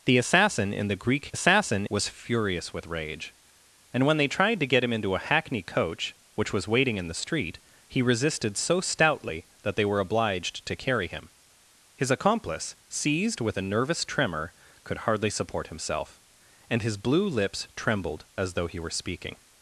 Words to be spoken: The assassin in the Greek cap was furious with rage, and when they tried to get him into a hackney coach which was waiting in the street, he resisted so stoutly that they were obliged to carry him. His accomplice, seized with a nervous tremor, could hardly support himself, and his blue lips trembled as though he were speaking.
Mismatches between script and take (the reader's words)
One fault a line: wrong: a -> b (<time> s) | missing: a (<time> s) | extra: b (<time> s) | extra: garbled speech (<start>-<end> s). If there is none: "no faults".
wrong: cap -> assassin (1.3 s)